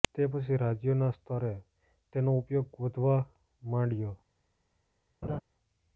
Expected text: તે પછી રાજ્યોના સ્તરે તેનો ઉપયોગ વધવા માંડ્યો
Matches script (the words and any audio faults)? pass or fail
fail